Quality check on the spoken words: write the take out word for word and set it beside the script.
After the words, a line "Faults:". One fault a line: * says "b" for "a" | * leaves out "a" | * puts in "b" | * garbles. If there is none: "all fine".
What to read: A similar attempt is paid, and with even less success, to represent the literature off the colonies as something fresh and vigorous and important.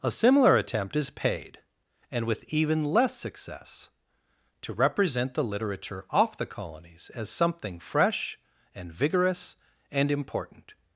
A similar attempt is paid, and with even less success, to represent the literature off the colonies as something fresh and vigorous and important.
Faults:
all fine